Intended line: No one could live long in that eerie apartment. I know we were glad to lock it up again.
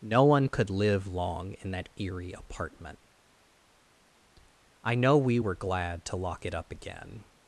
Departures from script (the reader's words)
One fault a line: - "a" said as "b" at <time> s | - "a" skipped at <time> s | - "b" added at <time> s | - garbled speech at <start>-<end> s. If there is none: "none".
none